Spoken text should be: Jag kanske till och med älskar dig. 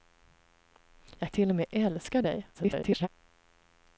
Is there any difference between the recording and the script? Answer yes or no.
yes